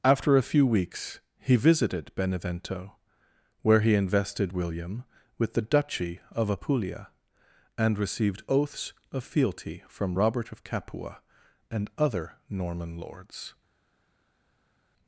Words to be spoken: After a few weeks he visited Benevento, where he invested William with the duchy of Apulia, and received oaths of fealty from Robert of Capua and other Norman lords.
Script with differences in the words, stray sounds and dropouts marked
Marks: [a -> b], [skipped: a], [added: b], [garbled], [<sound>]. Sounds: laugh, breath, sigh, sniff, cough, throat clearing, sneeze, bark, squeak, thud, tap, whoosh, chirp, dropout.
After a few weeks he visited Benevento, where he invested William with the duchy of Apulia, and received oaths of fealty from Robert of Capua and other Norman lords.